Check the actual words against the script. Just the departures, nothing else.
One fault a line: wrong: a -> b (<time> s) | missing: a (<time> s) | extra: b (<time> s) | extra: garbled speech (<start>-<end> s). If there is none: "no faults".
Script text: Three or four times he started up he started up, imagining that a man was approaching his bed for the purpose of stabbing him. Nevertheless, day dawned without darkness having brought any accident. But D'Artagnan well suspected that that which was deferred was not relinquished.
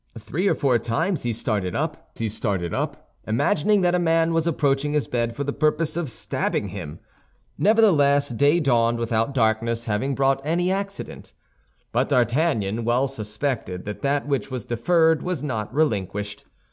no faults